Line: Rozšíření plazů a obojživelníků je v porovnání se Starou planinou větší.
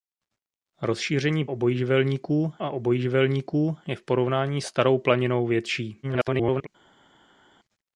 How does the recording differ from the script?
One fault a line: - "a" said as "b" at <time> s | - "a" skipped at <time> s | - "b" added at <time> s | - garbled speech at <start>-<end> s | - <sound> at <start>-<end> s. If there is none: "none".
- "plazů" said as "obojživelníků" at 1.5 s
- "se" skipped at 4.6 s
- garbled speech at 6.0-6.7 s